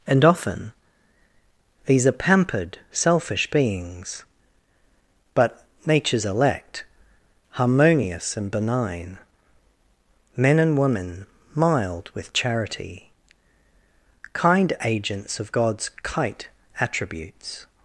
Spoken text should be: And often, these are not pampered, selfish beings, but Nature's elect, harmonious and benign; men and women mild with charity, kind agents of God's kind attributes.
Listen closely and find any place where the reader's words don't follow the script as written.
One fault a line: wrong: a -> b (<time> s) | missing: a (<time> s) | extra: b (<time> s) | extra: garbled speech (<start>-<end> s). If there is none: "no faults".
missing: not (2.1 s)
wrong: kind -> kite (16.0 s)